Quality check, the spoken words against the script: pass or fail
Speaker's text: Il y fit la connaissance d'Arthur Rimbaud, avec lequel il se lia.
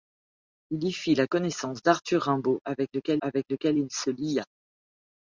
fail